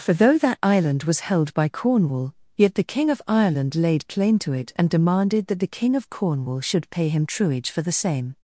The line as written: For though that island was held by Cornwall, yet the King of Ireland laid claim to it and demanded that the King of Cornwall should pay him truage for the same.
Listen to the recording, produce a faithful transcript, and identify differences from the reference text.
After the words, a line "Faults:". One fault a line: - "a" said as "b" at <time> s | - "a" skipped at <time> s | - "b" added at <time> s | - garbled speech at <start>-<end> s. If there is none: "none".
For though that island was held by Cornwall, yet the King of Ireland laid claim to it and demanded that the King of Cornwall should pay him truage for the same.
Faults:
none